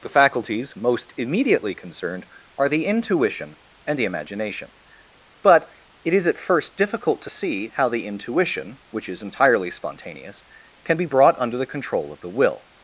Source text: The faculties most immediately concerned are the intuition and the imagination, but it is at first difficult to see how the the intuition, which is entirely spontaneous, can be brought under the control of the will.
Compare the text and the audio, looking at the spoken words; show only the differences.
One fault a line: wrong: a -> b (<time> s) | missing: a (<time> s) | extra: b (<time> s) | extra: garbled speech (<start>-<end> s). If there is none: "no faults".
missing: the (8.1 s)